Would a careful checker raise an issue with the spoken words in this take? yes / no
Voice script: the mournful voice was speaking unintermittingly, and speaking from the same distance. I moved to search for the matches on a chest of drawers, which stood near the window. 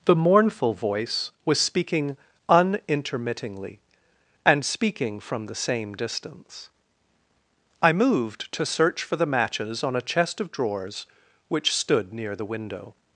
no